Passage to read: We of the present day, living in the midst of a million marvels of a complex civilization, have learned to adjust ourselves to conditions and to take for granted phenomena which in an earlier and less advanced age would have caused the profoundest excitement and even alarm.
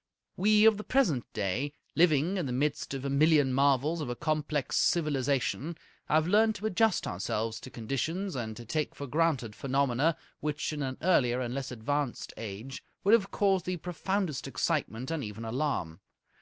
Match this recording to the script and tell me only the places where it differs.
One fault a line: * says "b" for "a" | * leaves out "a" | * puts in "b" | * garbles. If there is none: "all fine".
all fine